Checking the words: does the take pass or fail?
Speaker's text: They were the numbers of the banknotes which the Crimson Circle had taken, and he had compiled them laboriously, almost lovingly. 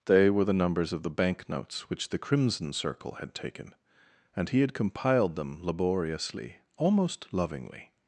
pass